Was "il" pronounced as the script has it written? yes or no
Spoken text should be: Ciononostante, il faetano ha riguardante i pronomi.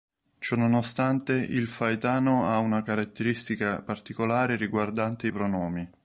yes